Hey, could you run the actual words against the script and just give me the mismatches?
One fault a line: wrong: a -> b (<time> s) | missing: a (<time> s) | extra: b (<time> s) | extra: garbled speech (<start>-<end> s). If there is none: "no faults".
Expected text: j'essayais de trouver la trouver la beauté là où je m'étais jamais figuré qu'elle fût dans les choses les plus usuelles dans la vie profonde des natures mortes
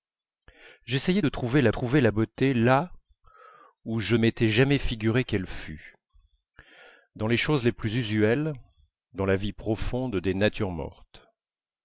no faults